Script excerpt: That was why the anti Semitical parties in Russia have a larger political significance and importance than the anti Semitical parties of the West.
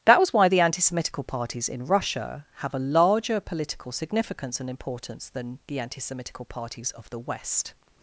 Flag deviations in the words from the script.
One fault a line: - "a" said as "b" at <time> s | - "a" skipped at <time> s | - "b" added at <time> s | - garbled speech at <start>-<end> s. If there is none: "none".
none